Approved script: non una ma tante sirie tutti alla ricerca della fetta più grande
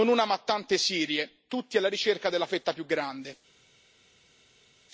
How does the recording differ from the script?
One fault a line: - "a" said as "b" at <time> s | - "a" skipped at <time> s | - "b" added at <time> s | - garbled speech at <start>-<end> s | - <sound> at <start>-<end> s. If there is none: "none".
none